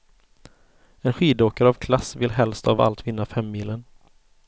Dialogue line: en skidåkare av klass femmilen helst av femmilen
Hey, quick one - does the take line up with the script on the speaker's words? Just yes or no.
no